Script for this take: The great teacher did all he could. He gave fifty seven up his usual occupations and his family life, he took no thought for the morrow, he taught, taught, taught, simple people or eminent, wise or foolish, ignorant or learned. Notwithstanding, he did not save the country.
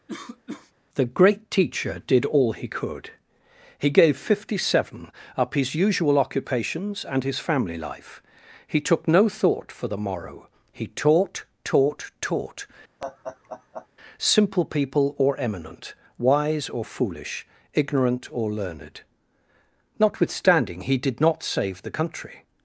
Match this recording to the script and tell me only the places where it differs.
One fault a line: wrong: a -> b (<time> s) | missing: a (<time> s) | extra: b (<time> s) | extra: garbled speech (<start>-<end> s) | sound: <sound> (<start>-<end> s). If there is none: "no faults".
sound: cough (0.1-0.7 s)
sound: laugh (13.0-13.9 s)